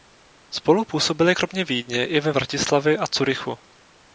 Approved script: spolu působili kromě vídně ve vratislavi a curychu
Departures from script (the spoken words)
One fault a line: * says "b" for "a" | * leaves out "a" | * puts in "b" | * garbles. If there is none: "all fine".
* puts in "i"